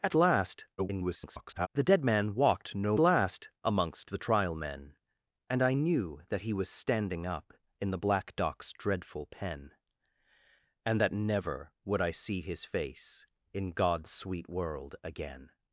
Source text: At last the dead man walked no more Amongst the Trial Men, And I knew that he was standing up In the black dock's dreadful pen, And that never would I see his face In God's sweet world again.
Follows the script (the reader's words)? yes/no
no